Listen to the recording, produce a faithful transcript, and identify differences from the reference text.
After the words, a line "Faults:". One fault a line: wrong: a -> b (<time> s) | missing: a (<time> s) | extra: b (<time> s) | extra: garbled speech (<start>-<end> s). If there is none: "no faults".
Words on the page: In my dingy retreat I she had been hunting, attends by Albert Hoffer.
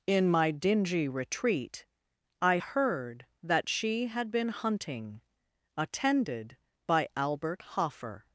In my dingy retreat I heard that she had been hunting, attended by Albert Hoffer.
Faults:
extra: heard that (2.5 s)
wrong: attends -> attended (5.8 s)